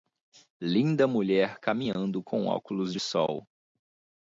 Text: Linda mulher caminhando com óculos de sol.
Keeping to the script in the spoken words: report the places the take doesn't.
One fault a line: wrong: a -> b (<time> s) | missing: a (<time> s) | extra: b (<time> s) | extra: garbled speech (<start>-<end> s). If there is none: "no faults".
no faults